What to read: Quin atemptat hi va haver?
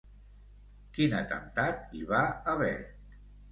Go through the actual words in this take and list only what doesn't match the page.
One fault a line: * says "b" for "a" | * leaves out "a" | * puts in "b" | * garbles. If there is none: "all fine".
all fine